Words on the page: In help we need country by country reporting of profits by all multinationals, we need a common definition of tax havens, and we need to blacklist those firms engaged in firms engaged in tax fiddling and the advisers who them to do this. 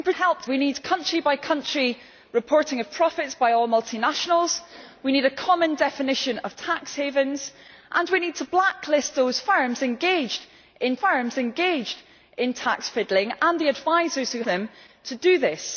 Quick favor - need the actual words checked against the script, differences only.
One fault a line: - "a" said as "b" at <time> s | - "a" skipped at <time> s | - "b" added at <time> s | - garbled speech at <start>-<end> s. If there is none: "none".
none